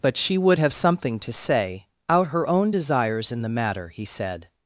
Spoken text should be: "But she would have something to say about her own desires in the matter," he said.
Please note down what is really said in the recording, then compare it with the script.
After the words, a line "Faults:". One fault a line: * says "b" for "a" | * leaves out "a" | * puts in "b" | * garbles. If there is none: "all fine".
"But she would have something to say out her own desires in the matter," he said.
Faults:
* says "out" for "about"